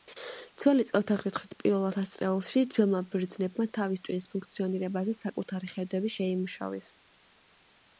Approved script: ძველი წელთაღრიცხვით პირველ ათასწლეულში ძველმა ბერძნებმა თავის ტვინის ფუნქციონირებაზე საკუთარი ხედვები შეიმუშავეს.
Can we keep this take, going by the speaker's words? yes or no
yes